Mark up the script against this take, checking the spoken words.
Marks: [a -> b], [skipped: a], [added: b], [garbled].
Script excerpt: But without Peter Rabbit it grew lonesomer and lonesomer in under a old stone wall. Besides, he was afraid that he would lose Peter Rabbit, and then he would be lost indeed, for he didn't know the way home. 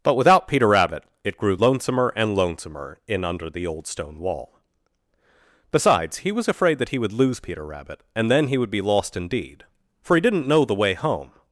But without Peter Rabbit it grew lonesomer and lonesomer in under [a -> the] old stone wall. Besides, he was afraid that he would lose Peter Rabbit, and then he would be lost indeed, for he didn't know the way home.